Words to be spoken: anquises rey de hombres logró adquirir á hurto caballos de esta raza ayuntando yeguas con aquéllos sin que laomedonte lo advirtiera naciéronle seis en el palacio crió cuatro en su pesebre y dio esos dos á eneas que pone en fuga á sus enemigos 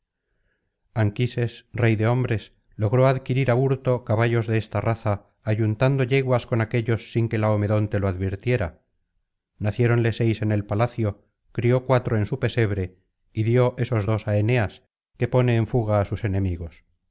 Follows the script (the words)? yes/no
yes